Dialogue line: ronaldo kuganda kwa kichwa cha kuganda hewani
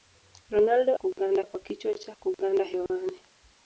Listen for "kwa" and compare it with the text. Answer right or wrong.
right